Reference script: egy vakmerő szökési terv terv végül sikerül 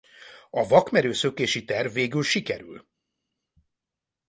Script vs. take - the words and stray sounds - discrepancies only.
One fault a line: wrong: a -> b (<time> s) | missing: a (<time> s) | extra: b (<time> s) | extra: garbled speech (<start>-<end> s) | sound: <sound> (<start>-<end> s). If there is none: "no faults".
wrong: egy -> a (0.5 s)
missing: terv (1.9 s)